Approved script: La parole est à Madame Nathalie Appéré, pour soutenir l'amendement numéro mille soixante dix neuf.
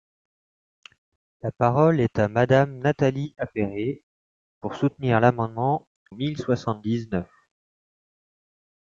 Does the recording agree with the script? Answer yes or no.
no